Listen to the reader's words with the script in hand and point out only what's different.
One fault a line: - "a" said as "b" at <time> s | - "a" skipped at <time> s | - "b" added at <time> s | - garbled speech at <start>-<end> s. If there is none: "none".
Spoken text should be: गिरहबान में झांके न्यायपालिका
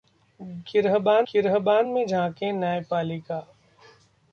- "गिरहबान" added at 1.3 s